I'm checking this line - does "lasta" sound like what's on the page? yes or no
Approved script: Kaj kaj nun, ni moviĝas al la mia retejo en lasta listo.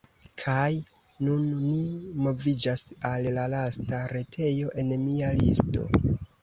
no